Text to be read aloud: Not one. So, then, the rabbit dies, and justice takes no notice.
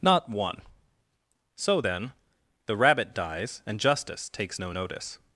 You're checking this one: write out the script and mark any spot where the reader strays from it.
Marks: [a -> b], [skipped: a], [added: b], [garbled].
Not one. So, then, the rabbit dies, and justice takes no notice.